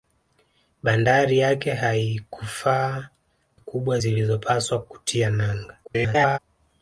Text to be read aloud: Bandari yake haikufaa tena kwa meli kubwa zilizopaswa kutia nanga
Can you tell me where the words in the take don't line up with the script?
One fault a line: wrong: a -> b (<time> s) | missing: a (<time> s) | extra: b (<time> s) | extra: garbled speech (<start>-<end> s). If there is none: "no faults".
missing: tena kwa meli (3.1 s)
extra: garbled speech (5.8-6.4 s)